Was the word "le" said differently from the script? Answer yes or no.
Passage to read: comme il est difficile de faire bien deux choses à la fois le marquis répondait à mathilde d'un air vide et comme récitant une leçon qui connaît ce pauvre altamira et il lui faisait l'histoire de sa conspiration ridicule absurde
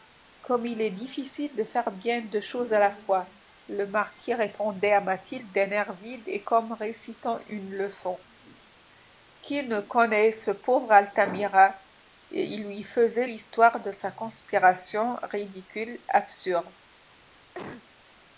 no